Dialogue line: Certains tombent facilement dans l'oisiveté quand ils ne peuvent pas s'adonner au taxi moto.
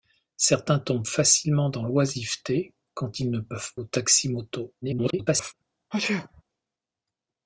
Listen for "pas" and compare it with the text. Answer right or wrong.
wrong